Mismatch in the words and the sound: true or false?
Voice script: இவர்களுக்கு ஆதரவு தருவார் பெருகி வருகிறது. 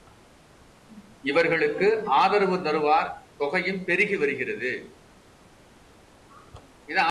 true